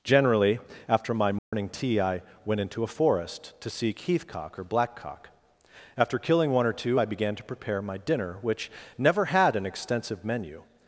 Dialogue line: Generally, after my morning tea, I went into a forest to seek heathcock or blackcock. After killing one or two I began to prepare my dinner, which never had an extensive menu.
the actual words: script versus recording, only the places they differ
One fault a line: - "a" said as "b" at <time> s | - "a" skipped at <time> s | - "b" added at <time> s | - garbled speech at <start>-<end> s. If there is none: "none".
none